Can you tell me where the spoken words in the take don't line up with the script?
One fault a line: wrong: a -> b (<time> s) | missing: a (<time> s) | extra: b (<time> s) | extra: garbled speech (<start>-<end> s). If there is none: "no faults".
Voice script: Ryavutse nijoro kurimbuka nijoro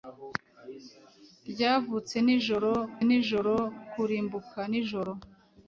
extra: nijoro (3.1 s)